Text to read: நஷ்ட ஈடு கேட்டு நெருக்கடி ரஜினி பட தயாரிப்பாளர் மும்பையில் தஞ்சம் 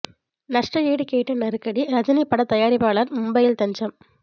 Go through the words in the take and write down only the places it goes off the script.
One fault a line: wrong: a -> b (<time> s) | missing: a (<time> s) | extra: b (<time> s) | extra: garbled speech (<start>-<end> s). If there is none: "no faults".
no faults